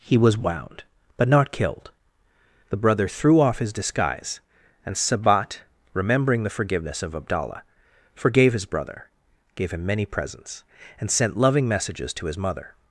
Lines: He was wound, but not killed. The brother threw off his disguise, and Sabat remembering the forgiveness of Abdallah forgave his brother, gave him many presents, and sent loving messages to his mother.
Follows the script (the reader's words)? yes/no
yes